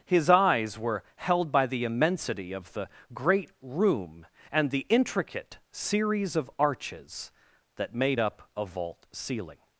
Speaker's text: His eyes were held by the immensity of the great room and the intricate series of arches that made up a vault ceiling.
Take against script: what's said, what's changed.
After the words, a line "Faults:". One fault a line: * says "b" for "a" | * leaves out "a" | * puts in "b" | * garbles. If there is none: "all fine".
His eyes were held by the immensity of the great room and the intricate series of arches that made up a vault ceiling.
Faults:
all fine